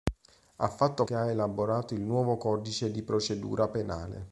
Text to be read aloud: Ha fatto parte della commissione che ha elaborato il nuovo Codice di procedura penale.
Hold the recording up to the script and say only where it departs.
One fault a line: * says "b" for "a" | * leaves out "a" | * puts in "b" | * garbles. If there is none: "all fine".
* leaves out "parte della commissione"